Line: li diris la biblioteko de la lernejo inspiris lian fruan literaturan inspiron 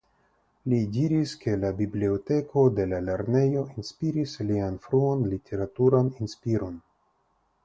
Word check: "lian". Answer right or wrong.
right